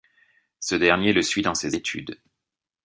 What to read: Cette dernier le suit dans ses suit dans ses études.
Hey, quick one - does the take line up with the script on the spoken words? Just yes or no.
no